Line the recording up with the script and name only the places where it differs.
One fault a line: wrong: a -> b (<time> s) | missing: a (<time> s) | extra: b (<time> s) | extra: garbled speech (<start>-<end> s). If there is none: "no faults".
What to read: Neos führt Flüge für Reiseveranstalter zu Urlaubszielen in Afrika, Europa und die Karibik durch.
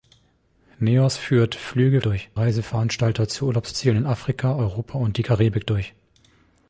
wrong: für -> durch (2.0 s)